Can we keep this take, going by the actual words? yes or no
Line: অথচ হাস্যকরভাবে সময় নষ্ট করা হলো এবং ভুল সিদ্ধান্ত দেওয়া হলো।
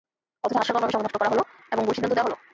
yes